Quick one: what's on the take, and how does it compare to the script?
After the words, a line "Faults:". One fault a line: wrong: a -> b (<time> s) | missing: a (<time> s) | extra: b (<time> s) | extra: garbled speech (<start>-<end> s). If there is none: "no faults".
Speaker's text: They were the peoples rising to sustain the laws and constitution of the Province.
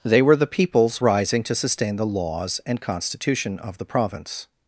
They were the peoples rising to sustain the laws and constitution of the Province.
Faults:
no faults